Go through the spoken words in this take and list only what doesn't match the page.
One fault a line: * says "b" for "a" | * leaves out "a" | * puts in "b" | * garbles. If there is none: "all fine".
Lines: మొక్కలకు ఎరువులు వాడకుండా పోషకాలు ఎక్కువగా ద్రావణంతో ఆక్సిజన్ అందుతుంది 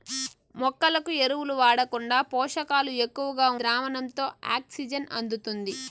all fine